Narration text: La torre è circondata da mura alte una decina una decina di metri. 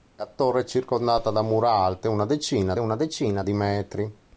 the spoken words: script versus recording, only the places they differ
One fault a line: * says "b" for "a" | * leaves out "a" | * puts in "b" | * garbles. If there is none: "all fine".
all fine